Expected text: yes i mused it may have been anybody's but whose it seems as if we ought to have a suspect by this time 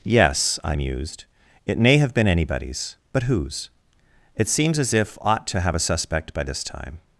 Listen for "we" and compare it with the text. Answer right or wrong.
wrong